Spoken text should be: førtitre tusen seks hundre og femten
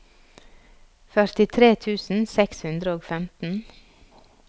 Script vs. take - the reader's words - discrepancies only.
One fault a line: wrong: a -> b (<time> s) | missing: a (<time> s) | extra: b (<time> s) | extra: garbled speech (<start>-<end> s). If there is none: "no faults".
no faults